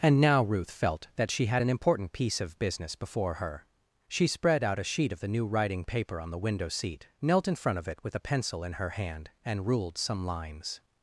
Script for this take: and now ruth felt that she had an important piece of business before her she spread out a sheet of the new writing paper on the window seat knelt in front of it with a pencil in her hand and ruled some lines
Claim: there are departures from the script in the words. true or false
false